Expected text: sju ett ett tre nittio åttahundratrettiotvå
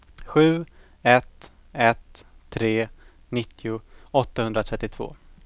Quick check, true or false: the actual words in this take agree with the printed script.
true